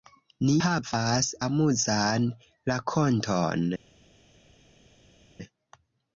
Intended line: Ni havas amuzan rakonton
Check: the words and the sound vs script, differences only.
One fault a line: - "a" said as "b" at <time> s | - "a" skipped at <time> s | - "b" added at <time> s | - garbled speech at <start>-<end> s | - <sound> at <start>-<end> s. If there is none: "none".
none